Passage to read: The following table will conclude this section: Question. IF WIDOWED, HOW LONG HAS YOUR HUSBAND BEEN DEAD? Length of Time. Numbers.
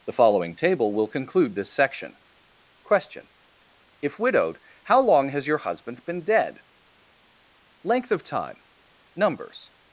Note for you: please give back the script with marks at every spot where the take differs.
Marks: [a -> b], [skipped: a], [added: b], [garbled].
The following table will conclude this section: Question. IF WIDOWED, HOW LONG HAS YOUR HUSBAND BEEN DEAD? Length of Time. Numbers.